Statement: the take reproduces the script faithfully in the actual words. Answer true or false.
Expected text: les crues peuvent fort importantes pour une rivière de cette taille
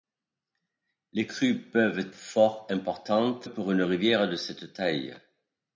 true